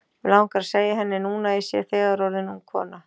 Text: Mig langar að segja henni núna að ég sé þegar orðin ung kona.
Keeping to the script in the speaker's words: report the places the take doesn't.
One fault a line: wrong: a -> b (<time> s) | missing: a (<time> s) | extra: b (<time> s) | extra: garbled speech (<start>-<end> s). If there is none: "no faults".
no faults